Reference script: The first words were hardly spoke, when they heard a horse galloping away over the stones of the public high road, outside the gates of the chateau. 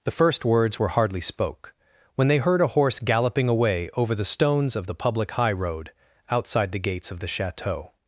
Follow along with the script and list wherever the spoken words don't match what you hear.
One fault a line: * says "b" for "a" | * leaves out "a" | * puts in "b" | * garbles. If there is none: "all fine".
all fine